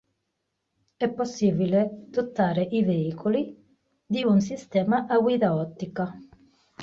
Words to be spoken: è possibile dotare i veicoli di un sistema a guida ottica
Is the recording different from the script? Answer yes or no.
no